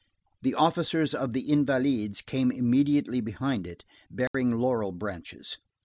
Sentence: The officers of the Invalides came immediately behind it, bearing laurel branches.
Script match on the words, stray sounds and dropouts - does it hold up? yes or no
no